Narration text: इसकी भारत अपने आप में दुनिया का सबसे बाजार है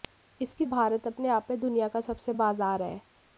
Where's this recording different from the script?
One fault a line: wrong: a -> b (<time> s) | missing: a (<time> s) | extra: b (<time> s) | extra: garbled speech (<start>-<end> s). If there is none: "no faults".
no faults